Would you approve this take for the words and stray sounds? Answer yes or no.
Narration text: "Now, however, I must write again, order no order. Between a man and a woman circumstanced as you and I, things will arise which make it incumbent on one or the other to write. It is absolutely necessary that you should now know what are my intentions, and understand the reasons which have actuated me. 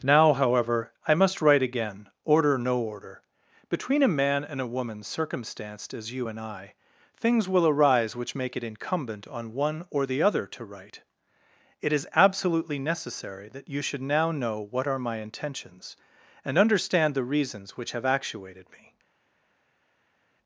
yes